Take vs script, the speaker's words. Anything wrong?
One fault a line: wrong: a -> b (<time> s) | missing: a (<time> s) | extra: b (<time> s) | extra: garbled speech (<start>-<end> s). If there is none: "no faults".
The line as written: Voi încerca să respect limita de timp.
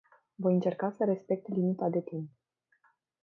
no faults